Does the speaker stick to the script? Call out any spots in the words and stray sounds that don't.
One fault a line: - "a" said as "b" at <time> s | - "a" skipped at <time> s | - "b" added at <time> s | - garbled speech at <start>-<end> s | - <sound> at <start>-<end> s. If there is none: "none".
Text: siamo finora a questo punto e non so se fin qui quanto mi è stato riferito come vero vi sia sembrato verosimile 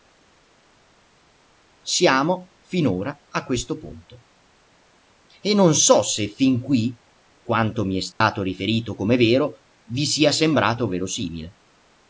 - dropout at 8.1-8.2 s